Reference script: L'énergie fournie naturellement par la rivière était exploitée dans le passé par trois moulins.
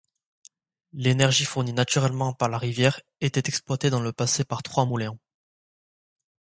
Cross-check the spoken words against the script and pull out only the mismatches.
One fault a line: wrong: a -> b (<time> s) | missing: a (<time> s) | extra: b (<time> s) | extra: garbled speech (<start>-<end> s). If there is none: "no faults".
no faults